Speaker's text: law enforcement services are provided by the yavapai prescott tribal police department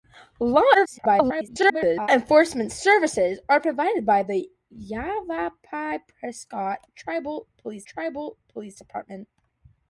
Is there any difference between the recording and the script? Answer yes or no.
yes